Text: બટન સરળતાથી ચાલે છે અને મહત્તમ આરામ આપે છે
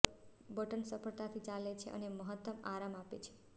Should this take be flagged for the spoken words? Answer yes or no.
no